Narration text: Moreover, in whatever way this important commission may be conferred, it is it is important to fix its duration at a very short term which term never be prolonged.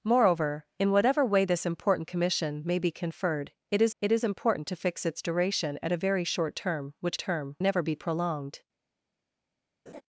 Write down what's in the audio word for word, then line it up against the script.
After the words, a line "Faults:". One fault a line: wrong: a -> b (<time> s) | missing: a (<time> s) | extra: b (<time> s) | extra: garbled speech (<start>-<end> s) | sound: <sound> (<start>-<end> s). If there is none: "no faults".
Moreover, in whatever way this important commission may be conferred, it is it is important to fix its duration at a very short term which term never be prolonged.
Faults:
sound: laugh (9.9-10.0 s)